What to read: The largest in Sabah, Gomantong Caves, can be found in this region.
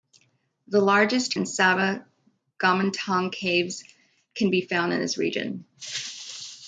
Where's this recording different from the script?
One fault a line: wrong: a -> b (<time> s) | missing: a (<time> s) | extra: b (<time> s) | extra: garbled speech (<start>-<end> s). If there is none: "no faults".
no faults